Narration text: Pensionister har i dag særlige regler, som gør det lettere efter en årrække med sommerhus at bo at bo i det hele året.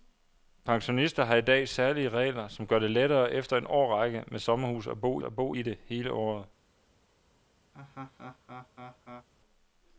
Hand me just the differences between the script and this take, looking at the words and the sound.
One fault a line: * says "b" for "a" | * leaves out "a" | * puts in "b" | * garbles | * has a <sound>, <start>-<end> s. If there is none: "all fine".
* has a laugh, 7.7-9.3 s